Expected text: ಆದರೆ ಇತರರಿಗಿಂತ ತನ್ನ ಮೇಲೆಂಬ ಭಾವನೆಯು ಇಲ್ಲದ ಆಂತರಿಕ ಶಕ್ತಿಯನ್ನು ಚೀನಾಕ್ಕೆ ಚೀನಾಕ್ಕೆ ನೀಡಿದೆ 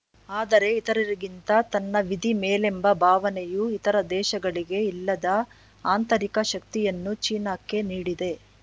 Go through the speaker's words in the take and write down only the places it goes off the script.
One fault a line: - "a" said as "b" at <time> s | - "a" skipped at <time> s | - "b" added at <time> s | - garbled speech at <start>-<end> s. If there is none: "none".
- "ವಿಧಿ" added at 2.1 s
- "ಇತರ ದೇಶಗಳಿಗೆ" added at 3.8 s
- "ಚೀನಾಕ್ಕೆ" skipped at 7.8 s